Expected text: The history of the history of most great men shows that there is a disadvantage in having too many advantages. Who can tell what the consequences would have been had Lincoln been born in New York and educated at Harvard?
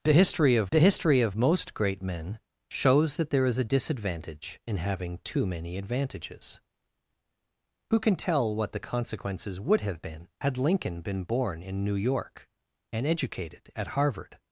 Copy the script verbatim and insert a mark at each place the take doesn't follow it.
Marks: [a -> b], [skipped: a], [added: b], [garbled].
The history of the history of most great men shows that there is a disadvantage in having too many advantages. Who can tell what the consequences would have been had Lincoln been born in New York and educated at Harvard?